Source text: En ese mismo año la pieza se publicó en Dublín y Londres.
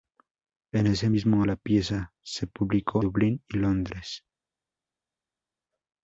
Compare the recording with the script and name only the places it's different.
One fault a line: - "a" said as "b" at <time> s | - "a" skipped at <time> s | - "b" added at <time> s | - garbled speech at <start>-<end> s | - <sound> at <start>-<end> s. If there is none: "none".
- "año" skipped at 1.4 s
- "en" skipped at 3.0 s